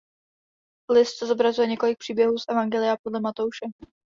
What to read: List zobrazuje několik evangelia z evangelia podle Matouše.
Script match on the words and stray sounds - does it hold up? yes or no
no